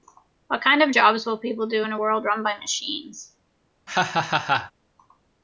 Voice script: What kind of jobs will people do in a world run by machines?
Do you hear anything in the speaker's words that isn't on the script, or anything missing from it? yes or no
no